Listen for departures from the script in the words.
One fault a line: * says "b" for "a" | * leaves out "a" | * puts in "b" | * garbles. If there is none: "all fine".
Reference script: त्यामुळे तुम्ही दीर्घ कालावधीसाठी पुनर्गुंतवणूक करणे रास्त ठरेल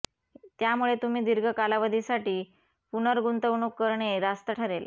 all fine